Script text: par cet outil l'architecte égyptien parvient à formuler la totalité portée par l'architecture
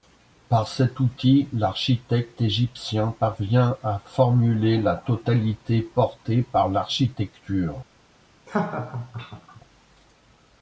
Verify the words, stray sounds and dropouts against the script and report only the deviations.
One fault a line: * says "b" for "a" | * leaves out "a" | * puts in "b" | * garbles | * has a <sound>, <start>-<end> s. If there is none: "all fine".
* has a laugh, 8.5-9.6 s